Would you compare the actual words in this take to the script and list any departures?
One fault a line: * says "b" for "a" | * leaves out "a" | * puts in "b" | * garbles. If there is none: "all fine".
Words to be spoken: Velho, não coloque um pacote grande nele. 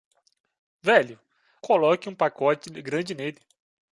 * leaves out "não"